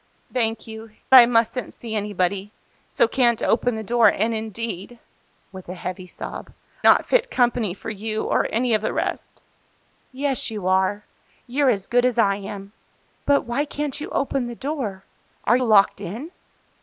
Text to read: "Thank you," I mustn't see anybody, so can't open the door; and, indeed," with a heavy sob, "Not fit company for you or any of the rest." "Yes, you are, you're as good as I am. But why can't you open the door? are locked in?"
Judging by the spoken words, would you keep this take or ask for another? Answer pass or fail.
pass